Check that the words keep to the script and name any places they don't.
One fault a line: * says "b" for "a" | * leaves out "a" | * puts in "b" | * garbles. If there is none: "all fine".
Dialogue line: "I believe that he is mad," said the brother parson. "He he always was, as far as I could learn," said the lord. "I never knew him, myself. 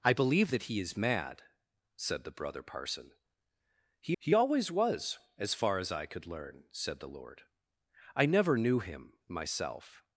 all fine